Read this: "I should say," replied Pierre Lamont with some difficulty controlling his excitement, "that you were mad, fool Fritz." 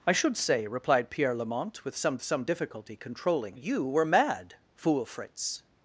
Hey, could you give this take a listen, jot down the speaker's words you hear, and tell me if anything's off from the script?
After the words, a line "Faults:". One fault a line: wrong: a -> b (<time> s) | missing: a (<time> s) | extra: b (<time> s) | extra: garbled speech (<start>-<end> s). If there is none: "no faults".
"I should say," replied Pierre Lamont with some some difficulty controlling you were mad, fool Fritz."
Faults:
extra: some (2.2 s)
missing: his excitement that (3.6 s)